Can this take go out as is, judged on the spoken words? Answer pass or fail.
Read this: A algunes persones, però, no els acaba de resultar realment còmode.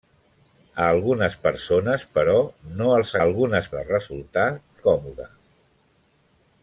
fail